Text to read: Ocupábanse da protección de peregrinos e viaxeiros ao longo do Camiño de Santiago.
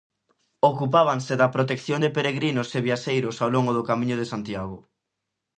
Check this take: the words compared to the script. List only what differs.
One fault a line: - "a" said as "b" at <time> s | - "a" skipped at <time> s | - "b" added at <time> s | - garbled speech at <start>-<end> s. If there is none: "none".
none